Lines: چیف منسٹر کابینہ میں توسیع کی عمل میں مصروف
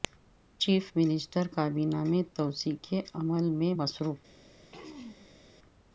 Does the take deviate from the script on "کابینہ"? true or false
false